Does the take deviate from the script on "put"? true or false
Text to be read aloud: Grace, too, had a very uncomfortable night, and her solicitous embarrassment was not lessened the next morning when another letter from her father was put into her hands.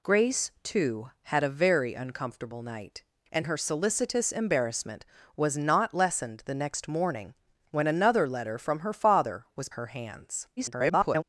true